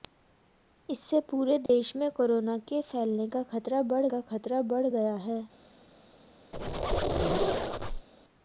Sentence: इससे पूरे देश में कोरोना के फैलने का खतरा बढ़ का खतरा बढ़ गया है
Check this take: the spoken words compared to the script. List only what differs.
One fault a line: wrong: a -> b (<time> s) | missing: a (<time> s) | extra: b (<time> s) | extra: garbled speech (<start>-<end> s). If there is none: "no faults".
no faults